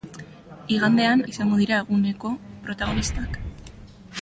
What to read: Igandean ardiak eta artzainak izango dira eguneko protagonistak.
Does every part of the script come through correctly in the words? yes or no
no